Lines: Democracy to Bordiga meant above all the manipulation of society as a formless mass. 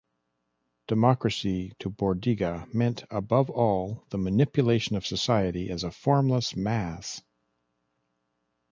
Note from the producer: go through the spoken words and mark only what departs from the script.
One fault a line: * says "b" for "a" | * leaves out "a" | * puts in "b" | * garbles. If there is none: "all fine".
all fine